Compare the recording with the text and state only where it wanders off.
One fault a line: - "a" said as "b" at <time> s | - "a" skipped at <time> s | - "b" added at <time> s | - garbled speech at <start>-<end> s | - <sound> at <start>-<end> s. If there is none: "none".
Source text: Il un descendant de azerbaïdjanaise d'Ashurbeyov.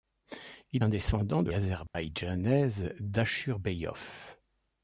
- dropout at 1.9-1.9 s